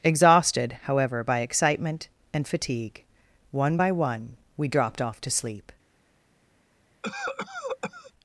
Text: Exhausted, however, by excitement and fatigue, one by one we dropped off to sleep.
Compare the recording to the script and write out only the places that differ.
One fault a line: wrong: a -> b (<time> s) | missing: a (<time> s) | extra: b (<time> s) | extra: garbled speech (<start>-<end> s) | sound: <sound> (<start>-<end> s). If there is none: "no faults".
sound: cough (7.0-8.1 s)